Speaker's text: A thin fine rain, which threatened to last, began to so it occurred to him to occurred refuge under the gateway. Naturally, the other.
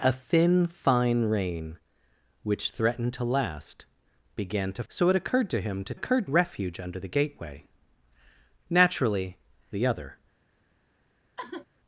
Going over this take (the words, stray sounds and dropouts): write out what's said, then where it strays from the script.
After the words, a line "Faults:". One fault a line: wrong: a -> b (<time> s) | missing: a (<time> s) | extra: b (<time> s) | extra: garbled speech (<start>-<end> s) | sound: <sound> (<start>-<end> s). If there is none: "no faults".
A thin fine rain, which threatened to last, began to so it occurred to him to occurred refuge under the gateway. Naturally, the other.
Faults:
sound: sigh (11.4-11.7 s)